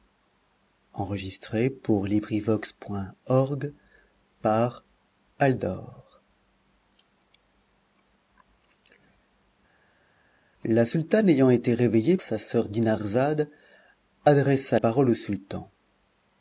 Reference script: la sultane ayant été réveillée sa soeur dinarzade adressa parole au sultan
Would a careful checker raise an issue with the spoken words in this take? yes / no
no